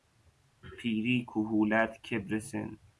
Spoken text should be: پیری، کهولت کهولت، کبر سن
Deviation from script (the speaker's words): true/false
true